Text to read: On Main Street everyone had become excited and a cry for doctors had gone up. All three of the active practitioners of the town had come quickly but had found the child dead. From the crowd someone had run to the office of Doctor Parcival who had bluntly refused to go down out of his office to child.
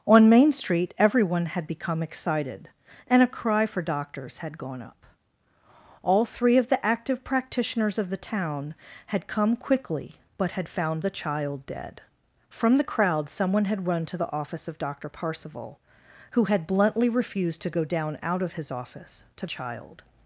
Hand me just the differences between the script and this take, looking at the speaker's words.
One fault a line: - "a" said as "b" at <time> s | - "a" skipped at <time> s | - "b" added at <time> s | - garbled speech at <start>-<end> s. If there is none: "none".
none